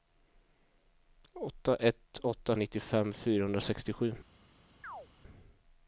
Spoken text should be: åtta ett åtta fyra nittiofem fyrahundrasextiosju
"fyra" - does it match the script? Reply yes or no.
no